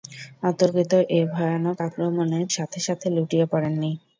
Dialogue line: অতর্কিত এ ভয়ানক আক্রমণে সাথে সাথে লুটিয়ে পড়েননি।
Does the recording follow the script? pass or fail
pass